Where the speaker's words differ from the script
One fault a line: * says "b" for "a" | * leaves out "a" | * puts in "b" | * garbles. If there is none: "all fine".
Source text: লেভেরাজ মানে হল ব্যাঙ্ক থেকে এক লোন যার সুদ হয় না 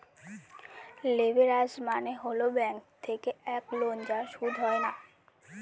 all fine